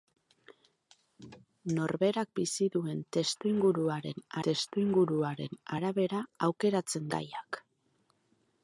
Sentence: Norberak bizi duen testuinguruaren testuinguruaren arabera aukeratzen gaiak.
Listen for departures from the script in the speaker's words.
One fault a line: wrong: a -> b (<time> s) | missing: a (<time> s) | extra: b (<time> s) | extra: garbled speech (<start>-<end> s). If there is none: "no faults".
no faults